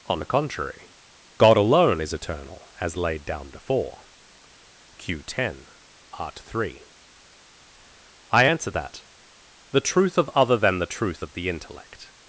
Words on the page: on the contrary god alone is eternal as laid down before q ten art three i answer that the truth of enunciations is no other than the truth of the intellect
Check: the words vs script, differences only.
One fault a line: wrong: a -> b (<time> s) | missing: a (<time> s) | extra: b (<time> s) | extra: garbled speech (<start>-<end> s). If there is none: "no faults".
missing: enunciations is no (10.3 s)